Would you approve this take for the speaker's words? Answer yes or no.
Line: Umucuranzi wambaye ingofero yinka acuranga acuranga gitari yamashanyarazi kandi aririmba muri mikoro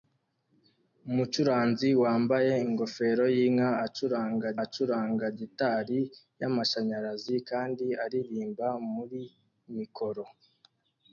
yes